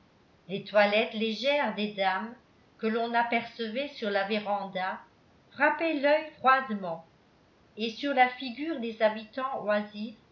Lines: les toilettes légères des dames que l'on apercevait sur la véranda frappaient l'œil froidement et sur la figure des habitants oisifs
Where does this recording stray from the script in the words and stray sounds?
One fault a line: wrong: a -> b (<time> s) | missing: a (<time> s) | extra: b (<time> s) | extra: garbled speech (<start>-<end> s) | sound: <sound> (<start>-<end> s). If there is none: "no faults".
no faults